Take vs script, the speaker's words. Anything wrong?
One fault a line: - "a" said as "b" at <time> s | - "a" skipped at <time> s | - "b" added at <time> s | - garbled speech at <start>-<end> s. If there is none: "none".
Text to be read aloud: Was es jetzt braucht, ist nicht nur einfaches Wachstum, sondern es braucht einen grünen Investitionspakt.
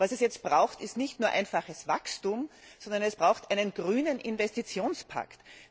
none